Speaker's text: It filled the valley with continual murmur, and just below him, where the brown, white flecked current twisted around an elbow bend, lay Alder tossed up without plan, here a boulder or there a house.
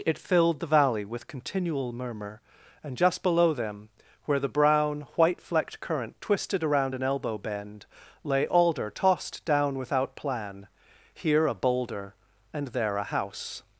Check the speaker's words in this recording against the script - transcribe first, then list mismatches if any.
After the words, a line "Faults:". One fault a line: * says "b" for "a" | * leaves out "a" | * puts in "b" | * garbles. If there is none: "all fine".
It filled the valley with continual murmur, and just below them, where the brown, white flecked current twisted around an elbow bend, lay Alder tossed down without plan, here a boulder and there a house.
Faults:
* says "them" for "him"
* says "down" for "up"
* says "and" for "or"